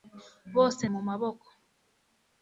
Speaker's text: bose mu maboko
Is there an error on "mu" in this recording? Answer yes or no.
no